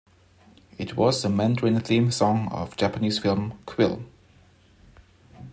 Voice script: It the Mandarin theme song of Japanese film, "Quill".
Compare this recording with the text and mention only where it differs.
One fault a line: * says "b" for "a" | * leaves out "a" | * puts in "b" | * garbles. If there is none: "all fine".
* puts in "was"